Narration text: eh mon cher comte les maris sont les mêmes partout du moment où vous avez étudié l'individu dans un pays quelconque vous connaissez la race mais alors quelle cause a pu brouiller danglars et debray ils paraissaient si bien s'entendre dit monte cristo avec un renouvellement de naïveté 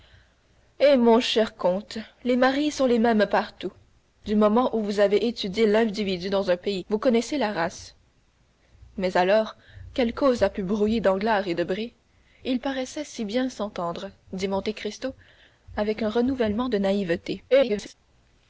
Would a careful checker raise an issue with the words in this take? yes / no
yes